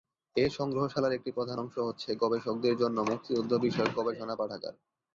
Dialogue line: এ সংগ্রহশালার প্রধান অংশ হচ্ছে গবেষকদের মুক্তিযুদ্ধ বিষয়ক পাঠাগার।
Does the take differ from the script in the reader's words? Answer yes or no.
yes